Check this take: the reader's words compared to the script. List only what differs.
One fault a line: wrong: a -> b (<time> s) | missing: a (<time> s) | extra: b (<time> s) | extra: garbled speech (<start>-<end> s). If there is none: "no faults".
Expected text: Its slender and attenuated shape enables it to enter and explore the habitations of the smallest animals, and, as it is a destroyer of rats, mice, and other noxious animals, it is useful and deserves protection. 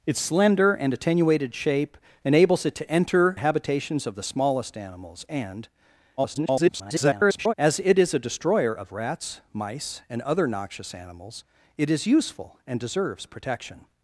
missing: and explore the (3.4 s)
extra: garbled speech (6.2-7.5 s)